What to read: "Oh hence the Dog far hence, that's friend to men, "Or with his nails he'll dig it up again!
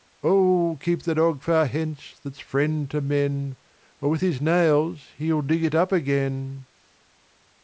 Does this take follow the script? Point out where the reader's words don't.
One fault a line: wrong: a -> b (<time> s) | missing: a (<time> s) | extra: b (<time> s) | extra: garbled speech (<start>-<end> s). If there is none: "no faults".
wrong: hence -> keep (0.8 s)